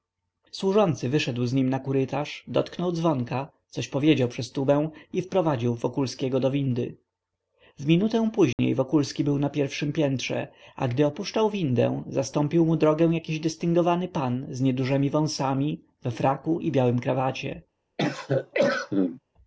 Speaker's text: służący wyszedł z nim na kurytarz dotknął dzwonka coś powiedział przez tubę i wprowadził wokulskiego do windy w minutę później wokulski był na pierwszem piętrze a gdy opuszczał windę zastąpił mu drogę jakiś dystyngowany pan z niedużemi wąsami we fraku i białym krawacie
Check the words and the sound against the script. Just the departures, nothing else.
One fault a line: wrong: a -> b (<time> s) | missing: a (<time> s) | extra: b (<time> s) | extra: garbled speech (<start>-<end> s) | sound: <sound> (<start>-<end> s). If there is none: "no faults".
sound: dropout (8.5-8.6 s)
sound: cough (18.0-19.2 s)